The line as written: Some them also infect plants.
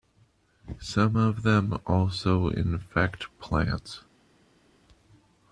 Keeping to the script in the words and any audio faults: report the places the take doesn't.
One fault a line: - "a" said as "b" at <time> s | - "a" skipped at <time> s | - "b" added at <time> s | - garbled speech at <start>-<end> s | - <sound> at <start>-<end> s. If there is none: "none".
- "of" added at 1.1 s